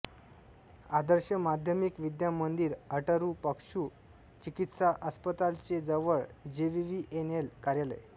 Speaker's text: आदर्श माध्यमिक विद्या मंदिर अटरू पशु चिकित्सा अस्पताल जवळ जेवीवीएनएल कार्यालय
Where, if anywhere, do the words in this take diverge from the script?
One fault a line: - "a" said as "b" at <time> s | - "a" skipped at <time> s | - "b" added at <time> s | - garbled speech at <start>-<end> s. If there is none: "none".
- "चे" added at 5.7 s